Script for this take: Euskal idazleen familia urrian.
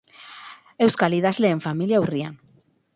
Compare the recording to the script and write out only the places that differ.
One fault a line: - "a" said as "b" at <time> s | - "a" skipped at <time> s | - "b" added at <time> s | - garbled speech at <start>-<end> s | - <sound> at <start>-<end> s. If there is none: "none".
none